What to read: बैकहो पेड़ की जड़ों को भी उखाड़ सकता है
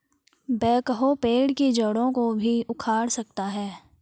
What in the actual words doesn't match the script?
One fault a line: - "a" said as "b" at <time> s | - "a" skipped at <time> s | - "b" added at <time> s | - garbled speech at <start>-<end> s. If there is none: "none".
none